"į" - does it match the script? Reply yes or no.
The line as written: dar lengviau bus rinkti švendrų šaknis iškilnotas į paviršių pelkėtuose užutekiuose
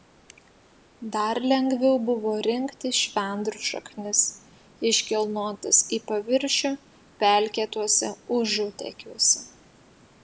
yes